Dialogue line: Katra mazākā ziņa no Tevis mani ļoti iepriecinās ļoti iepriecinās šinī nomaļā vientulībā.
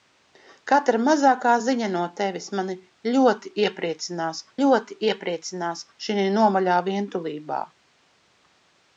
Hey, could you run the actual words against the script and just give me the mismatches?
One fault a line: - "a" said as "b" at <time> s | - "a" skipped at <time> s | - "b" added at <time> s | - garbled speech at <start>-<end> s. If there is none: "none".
none